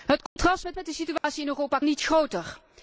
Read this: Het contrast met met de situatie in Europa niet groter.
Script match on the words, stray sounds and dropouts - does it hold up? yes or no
no